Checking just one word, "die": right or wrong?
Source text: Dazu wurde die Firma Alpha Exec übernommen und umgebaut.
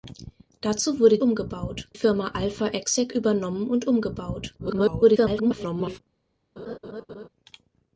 wrong